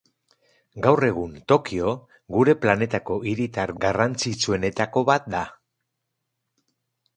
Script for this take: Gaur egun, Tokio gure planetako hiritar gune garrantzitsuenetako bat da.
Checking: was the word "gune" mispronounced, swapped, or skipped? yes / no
yes